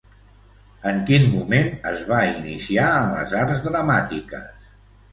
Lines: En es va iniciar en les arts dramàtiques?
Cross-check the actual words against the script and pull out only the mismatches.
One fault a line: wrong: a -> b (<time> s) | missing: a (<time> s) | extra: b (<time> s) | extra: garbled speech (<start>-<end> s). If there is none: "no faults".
extra: quin moment (1.1 s)